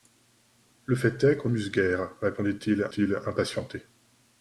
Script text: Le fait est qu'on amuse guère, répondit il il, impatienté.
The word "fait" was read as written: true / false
true